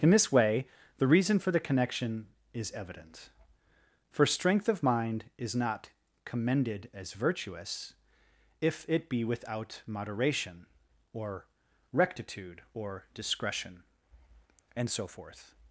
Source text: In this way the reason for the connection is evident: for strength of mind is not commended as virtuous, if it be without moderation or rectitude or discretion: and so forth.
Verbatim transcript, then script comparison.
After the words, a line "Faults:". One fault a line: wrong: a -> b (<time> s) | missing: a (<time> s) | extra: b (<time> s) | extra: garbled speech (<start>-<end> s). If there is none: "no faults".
In this way the reason for the connection is evident: for strength of mind is not commended as virtuous, if it be without moderation or rectitude or discretion: and so forth.
Faults:
no faults